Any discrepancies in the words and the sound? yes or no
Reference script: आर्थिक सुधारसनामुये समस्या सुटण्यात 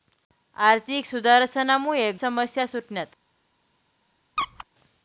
yes